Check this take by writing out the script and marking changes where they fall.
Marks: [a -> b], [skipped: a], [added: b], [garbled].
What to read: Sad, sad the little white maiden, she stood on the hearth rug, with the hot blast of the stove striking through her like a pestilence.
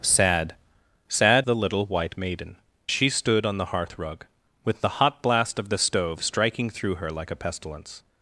Sad, sad the little white maiden, she stood on the hearth rug, with the hot blast of the stove striking through her like a pestilence.